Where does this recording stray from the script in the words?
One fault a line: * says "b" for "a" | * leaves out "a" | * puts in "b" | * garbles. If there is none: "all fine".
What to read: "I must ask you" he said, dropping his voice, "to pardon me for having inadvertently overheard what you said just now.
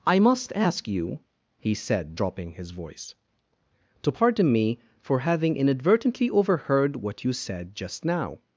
all fine